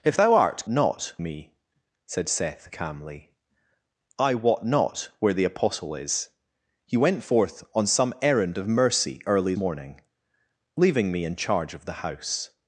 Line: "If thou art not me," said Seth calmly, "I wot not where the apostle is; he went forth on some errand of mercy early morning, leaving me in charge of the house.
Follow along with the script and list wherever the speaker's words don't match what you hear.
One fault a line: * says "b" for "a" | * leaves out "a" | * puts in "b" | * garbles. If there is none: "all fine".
all fine